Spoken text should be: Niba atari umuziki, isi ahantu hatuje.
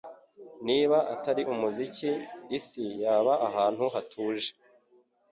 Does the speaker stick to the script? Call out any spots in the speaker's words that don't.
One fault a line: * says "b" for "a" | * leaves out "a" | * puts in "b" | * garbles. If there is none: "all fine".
* puts in "yaba"